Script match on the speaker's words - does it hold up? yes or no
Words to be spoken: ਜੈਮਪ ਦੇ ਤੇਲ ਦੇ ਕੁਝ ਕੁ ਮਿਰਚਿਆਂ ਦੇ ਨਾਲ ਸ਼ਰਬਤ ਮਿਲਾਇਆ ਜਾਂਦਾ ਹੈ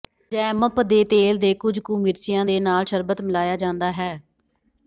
yes